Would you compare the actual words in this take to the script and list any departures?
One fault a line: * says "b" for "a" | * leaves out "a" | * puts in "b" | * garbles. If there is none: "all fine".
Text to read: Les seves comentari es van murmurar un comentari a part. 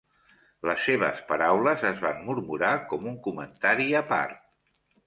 * says "paraules" for "comentari"
* puts in "com"